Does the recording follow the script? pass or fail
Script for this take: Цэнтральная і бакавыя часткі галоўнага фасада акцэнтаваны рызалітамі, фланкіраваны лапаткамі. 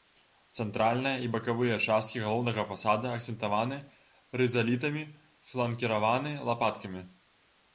pass